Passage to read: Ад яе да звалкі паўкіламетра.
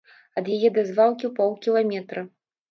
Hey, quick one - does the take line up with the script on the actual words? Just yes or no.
yes